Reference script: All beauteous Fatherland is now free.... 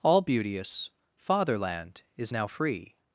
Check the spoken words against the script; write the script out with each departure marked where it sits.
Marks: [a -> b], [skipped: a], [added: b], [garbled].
All beauteous Fatherland is now free....